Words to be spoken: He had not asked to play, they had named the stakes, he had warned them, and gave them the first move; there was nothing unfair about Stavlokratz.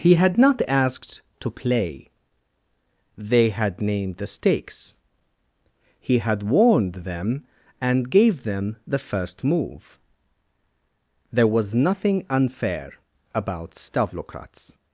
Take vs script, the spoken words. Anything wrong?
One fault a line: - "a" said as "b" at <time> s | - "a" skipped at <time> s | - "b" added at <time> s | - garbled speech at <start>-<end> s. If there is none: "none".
none